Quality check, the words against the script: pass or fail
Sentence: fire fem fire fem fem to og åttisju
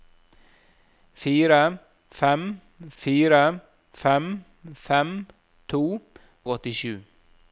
pass